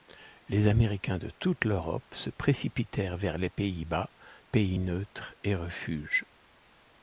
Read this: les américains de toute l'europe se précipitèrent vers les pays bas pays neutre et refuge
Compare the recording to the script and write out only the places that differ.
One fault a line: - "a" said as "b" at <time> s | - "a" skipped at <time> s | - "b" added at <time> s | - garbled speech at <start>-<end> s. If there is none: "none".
none